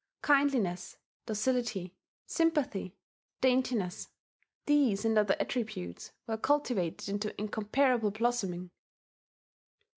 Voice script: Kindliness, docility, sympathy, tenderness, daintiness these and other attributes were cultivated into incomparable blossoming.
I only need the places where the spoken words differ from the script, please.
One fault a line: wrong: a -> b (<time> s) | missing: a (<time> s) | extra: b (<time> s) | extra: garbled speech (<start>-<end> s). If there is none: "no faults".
missing: tenderness (3.0 s)